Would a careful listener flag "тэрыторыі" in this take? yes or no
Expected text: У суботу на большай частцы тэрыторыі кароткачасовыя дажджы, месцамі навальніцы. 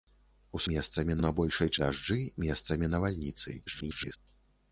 yes